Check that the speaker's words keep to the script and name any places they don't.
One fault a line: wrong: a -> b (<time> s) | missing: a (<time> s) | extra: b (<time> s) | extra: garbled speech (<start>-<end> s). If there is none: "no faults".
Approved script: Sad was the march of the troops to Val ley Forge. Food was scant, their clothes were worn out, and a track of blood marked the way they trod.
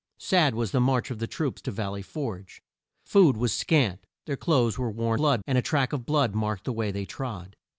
wrong: out -> blood (5.1 s)